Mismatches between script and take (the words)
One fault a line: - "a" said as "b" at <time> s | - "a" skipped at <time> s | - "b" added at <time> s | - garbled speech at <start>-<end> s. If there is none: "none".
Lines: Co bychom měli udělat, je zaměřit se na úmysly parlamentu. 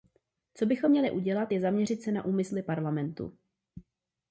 none